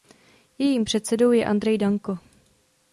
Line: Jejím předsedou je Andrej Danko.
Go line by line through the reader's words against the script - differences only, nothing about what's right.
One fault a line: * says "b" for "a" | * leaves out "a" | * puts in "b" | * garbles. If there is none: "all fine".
all fine